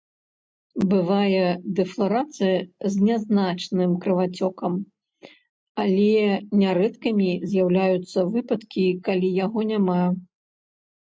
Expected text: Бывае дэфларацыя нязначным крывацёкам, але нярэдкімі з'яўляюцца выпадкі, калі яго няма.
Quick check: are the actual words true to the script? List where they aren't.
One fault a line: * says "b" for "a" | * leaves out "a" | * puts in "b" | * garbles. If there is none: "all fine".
* puts in "з"